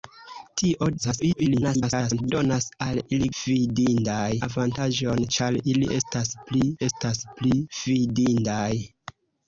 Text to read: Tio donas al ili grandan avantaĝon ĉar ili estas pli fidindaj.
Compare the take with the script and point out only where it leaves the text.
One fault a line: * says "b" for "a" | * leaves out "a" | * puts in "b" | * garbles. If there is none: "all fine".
* garbles
* says "fidindaj" for "grandan"
* puts in "estas pli"